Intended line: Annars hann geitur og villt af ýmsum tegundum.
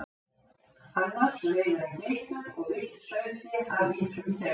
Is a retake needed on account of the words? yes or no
yes